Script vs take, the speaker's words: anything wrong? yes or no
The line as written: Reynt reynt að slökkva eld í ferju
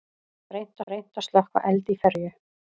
no